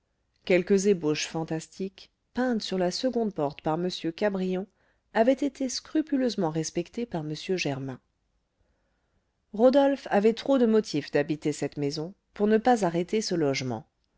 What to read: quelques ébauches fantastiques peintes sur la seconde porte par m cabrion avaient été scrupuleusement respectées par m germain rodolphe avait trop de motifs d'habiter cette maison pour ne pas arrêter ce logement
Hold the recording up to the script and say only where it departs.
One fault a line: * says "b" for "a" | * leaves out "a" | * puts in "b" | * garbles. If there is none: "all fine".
all fine